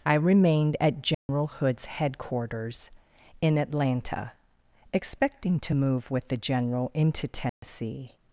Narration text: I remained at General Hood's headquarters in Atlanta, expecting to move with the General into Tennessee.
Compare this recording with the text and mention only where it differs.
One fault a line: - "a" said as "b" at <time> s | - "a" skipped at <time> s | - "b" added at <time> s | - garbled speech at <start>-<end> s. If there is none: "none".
none